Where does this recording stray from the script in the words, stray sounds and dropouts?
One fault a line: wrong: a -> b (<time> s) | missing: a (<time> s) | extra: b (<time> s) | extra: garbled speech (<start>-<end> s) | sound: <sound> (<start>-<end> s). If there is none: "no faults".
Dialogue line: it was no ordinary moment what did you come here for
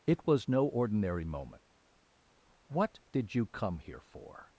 no faults